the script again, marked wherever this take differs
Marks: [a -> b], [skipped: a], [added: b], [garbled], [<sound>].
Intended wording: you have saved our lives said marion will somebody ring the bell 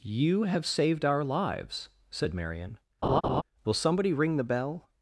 you have saved our lives said marion [laugh] will somebody ring the bell